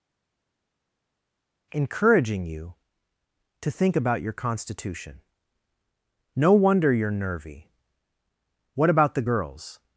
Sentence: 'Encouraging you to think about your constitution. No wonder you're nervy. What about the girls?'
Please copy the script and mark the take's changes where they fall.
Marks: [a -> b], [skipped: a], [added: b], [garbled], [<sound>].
'Encouraging you to think about your constitution. No wonder you're nervy. What about the girls?'